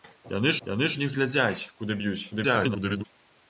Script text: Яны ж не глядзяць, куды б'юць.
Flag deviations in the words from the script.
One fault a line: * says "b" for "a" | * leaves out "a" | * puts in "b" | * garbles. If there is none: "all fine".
* puts in "яны"
* garbles